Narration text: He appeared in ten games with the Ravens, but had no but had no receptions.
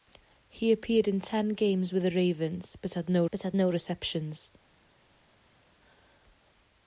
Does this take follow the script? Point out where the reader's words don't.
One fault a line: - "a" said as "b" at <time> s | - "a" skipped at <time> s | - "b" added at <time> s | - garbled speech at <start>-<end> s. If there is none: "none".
none